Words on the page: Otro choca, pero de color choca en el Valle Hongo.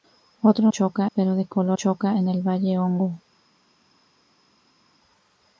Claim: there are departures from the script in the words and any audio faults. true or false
false